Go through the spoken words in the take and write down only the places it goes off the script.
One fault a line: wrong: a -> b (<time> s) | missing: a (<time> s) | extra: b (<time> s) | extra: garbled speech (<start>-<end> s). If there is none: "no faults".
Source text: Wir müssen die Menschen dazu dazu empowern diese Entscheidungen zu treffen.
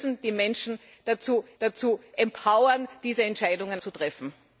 no faults